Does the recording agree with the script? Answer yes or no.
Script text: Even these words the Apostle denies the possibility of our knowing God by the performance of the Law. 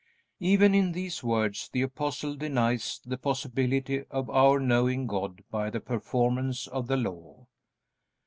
no